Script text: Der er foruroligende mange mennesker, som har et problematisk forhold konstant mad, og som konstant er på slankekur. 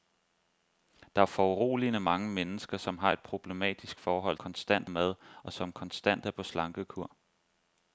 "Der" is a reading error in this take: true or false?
false